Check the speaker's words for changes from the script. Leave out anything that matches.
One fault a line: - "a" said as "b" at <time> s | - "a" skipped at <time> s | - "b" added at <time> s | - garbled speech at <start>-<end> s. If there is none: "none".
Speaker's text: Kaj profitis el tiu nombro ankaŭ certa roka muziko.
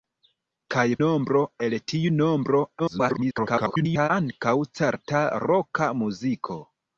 - "profitis" said as "nombro" at 1.0 s
- garbled speech at 2.8-4.1 s